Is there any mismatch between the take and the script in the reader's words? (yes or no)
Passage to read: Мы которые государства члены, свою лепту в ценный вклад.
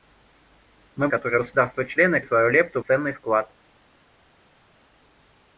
no